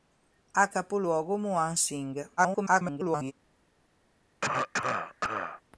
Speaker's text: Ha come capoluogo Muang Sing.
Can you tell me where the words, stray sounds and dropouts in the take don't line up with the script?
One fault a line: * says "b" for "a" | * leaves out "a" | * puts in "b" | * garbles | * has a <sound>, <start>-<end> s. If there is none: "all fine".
* leaves out "come"
* garbles
* has a cough, 4.4-5.6 s